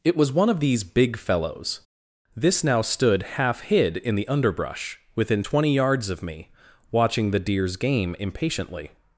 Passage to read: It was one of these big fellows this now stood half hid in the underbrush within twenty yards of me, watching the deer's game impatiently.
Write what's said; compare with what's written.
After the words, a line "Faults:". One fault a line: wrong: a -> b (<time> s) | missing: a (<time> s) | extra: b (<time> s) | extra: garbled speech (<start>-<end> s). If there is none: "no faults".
It was one of these big fellows this now stood half hid in the underbrush within twenty yards of me, watching the deer's game impatiently.
Faults:
no faults